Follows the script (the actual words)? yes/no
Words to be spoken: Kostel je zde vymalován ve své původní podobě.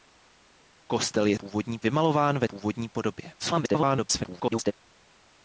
no